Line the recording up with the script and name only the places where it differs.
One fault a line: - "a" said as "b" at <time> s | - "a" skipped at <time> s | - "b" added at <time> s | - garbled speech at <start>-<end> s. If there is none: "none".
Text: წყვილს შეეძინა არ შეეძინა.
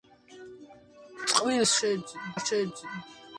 none